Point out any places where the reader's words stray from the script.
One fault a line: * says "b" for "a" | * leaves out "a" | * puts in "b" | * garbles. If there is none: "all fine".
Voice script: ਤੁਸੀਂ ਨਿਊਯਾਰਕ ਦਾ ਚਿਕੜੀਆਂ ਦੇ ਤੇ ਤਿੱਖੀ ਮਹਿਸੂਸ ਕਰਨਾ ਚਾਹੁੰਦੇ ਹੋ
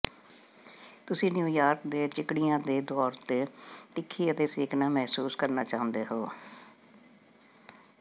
* says "ਦੇ" for "ਦਾ"
* puts in "ਤੌਰ"
* puts in "ਅਤੇ ਸੇਕਣਾ"